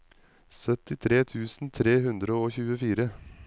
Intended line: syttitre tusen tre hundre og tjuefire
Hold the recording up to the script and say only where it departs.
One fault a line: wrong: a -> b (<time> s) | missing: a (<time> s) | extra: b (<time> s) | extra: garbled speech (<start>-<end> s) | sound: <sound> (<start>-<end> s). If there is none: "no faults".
no faults